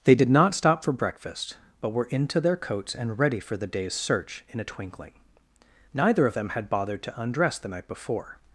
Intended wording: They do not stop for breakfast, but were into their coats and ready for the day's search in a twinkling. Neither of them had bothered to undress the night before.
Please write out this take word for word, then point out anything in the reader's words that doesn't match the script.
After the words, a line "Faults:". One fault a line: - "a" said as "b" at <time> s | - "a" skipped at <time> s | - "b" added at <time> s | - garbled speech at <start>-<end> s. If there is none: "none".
They did not stop for breakfast, but were into their coats and ready for the day's search in a twinkling. Neither of them had bothered to undress the night before.
Faults:
- "do" said as "did" at 0.1 s